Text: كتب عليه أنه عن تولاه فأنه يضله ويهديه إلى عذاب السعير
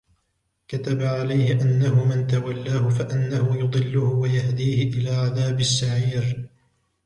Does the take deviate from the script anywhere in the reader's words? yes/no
yes